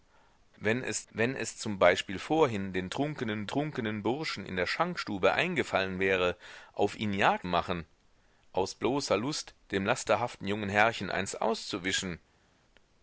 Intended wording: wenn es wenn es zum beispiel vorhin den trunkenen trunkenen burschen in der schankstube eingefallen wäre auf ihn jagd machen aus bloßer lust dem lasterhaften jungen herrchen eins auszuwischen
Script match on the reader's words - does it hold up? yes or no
yes